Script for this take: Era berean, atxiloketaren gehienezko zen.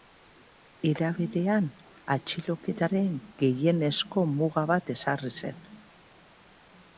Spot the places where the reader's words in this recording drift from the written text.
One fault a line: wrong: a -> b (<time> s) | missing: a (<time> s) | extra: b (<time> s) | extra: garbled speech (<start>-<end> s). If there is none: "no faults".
extra: muga bat ezarri (4.4 s)